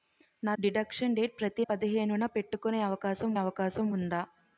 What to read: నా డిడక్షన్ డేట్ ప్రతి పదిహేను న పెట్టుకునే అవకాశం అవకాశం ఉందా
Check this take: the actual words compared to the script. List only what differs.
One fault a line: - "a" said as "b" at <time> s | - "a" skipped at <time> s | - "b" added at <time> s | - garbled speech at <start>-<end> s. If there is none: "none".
none